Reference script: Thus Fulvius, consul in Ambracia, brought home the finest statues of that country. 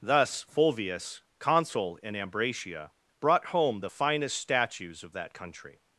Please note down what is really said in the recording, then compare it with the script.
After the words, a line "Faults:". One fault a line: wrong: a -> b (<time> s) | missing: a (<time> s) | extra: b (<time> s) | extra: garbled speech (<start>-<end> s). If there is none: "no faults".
Thus Fulvius, consul in Ambracia, brought home the finest statues of that country.
Faults:
no faults